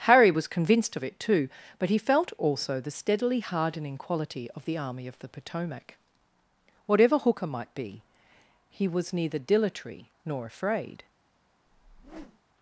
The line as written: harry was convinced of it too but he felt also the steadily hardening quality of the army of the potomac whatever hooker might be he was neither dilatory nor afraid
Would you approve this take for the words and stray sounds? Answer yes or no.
no